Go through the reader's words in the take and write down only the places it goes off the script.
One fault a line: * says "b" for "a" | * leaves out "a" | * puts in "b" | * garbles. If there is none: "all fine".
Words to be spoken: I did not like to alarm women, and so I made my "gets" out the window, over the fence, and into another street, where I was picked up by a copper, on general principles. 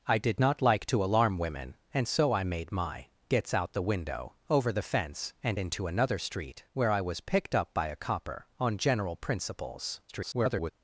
* garbles